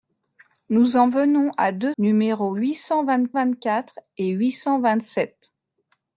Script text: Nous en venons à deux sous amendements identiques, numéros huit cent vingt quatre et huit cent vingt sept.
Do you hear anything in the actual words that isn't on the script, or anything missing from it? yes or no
yes